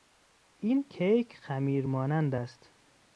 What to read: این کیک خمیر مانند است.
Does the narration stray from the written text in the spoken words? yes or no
no